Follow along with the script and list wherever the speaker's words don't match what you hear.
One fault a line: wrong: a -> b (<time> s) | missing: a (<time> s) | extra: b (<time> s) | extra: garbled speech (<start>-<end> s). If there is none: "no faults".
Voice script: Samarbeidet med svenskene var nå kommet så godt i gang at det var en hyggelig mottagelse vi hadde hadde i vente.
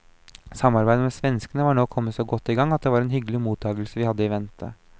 missing: hadde (4.2 s)